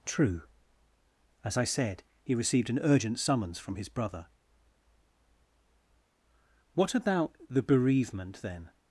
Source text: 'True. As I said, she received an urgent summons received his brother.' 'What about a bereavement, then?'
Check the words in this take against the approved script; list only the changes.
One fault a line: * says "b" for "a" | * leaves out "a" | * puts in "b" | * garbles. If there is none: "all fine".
* says "he" for "she"
* says "from" for "received"
* says "the" for "a"